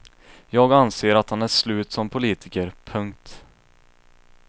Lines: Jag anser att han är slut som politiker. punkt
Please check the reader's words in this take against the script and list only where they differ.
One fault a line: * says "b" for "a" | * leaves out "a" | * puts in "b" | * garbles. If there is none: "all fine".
all fine